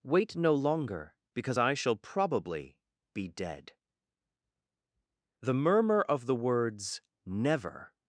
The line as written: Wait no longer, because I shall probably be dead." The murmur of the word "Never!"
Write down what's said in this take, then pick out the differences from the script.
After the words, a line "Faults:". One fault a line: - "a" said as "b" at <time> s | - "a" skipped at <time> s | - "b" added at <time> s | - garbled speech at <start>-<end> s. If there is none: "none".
Wait no longer, because I shall probably be dead." The murmur of the words "Never!"
Faults:
- "word" said as "words" at 6.4 s